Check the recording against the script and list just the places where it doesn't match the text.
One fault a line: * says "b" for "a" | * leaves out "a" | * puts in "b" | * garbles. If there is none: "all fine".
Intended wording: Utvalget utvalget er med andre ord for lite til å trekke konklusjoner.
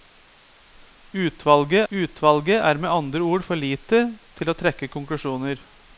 all fine